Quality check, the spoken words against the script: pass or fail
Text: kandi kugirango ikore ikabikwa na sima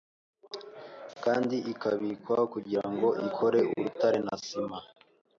fail